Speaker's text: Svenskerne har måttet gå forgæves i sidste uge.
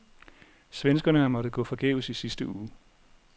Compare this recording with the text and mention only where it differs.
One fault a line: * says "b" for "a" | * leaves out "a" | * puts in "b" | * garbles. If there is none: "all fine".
all fine